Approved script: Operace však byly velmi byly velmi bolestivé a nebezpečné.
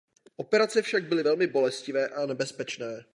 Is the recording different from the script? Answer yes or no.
yes